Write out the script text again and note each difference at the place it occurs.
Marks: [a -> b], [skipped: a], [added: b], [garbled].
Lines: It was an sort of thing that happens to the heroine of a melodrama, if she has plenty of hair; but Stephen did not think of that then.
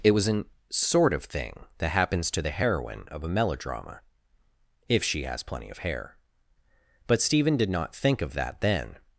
It was an sort of thing that happens to the heroine of a melodrama, if she has plenty of hair; but Stephen did not think of that then.